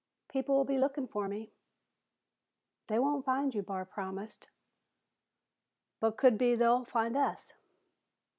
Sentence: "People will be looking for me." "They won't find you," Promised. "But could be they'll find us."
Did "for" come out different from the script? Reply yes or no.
no